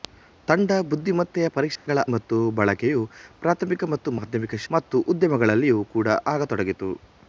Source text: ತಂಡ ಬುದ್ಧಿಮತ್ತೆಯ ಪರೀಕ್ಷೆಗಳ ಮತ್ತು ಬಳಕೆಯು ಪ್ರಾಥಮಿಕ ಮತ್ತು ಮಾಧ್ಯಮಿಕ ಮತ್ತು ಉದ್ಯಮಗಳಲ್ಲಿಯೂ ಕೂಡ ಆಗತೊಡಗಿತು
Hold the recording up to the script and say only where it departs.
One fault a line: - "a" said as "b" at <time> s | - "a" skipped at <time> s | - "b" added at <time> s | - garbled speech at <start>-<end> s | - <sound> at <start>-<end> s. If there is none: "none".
- dropout at 1.8-1.9 s